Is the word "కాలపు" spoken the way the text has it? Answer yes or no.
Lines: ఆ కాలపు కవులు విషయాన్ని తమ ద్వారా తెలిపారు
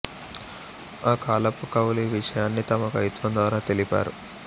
yes